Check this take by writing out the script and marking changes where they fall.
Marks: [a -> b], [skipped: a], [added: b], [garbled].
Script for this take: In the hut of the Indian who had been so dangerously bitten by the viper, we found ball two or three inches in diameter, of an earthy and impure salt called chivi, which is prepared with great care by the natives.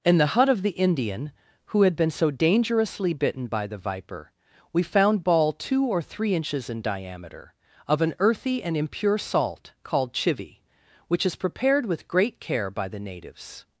In the hut of the Indian who had been so dangerously bitten by the viper, we found ball two or three inches in diameter, of an earthy and impure salt called chivi, which is prepared with great care by the natives.